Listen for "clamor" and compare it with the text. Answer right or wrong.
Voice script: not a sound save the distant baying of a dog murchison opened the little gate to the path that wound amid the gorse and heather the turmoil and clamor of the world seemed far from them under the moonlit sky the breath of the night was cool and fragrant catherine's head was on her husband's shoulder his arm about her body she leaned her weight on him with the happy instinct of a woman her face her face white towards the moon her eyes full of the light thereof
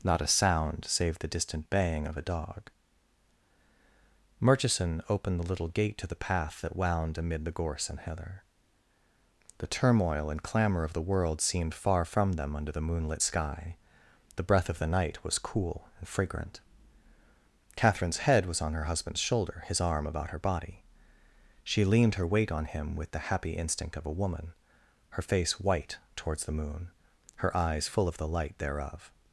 right